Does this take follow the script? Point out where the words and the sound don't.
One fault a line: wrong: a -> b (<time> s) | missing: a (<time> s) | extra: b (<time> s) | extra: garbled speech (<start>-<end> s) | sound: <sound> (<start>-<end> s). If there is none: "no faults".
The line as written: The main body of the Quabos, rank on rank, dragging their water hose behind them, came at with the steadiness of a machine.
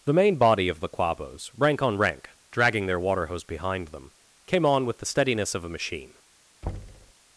wrong: at -> on (4.7 s)
sound: thud (6.6-7.1 s)